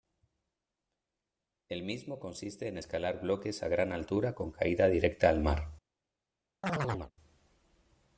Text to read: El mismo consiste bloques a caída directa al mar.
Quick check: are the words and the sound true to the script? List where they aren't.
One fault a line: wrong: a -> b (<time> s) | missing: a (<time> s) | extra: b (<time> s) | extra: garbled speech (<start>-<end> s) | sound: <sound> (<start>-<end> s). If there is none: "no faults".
extra: en escalar (2.7 s)
extra: gran altura con (3.7 s)
sound: chirp (6.6-7.1 s)